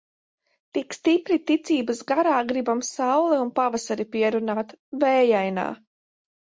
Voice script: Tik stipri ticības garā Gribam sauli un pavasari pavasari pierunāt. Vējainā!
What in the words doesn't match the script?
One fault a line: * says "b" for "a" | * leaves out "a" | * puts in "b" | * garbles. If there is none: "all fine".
* leaves out "pavasari"